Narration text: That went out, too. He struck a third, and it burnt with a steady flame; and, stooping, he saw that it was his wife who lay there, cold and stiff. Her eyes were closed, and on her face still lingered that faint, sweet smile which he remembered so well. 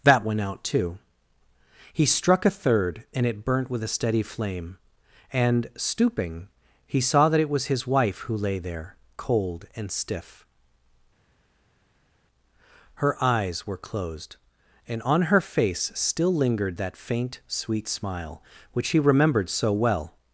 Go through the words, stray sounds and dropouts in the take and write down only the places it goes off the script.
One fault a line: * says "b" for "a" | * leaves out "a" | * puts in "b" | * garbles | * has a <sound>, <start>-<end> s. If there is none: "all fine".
all fine